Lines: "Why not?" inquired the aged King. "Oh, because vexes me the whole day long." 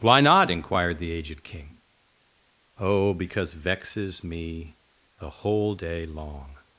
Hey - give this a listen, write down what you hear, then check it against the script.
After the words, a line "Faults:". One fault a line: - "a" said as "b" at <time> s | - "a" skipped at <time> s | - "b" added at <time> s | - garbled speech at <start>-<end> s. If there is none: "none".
"Why not?" inquired the aged King. "Oh, because vexes me the whole day long."
Faults:
none